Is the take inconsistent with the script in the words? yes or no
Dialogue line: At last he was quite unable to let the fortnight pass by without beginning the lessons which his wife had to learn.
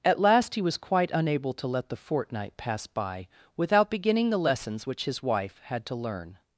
no